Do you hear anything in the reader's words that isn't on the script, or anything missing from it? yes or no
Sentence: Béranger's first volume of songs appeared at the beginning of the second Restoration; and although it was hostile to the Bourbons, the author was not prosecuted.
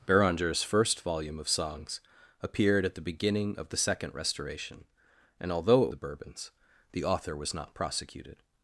yes